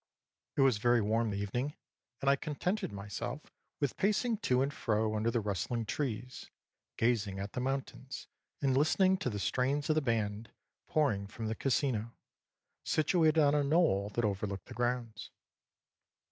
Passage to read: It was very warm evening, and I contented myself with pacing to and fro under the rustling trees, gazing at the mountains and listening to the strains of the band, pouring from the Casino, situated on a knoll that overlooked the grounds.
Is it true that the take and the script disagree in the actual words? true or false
false